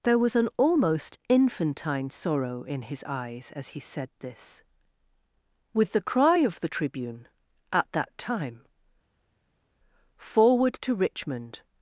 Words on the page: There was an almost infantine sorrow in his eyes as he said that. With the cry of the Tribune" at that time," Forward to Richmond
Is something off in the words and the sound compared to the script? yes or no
yes